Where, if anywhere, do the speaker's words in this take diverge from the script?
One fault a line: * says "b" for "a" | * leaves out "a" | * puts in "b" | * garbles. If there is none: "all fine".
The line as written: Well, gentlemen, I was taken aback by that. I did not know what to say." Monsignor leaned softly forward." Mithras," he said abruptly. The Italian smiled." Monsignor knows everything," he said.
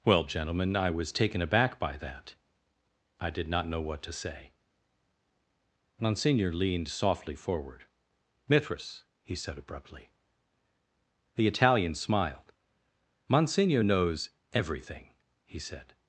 all fine